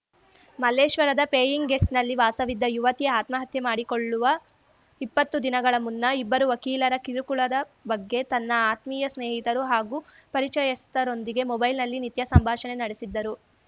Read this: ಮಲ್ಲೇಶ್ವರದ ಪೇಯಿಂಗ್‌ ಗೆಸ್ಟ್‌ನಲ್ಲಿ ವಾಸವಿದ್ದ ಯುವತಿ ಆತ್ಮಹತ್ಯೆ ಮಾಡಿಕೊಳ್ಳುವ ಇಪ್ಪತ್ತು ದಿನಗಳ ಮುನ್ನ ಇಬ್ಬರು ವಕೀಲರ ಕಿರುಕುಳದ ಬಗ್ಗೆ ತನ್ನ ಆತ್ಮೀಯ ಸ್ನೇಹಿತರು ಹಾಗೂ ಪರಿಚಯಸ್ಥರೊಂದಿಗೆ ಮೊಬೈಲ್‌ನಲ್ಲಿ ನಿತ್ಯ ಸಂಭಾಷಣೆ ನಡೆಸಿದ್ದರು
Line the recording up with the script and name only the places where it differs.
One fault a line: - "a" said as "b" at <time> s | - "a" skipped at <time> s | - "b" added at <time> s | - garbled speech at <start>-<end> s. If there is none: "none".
none